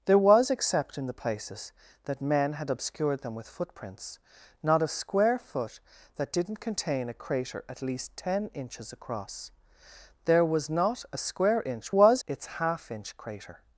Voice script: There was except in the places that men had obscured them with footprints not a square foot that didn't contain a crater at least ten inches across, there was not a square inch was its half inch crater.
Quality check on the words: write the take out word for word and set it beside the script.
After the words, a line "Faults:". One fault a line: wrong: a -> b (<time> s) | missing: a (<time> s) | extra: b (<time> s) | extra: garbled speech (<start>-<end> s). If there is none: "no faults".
There was except in the places that men had obscured them with footprints not a square foot that didn't contain a crater at least ten inches across, there was not a square inch was its half inch crater.
Faults:
no faults